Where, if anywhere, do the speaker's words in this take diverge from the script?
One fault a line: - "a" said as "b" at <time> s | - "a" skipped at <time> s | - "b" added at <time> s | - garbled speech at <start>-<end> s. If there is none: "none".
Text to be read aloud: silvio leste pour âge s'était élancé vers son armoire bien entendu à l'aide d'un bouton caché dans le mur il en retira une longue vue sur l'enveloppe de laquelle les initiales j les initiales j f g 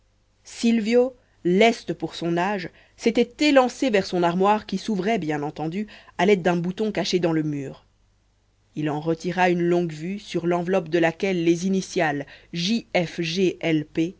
- "son" added at 2.1 s
- "qui s'ouvrait" added at 4.7 s
- "les initiales j" skipped at 12.9 s